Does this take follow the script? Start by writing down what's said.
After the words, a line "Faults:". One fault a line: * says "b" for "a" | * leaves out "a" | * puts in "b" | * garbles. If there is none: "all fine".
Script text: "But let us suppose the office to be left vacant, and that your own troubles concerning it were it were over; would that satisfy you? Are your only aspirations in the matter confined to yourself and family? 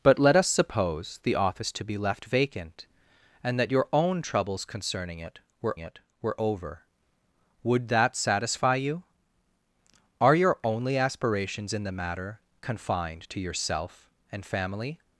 "But let us suppose the office to be left vacant, and that your own troubles concerning it were it were over; would that satisfy you? Are your only aspirations in the matter confined to yourself and family?
Faults:
all fine